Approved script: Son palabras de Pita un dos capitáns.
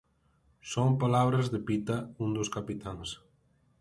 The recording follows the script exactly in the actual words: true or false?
true